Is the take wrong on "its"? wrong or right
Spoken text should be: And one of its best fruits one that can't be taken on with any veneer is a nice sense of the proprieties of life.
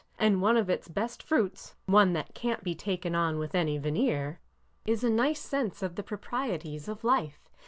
right